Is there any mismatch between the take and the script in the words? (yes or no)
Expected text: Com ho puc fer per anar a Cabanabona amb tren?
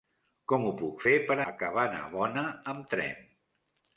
yes